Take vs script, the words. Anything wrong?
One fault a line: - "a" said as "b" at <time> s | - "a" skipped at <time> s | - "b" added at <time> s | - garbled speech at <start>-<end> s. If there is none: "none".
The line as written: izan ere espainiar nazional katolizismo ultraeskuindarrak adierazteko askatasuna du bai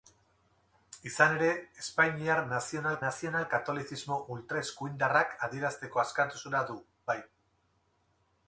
- "nazional" added at 3.1 s